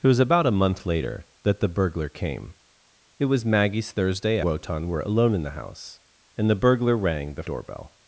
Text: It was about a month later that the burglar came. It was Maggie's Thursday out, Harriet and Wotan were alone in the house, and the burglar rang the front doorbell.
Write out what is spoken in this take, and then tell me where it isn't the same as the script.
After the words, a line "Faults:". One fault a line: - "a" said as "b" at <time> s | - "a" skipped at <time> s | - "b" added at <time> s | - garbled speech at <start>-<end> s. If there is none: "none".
It was about a month later that the burglar came. It was Maggie's Thursday Wotan were alone in the house, and the burglar rang the doorbell.
Faults:
- "out Harriet and" skipped at 4.4 s
- "front" skipped at 7.4 s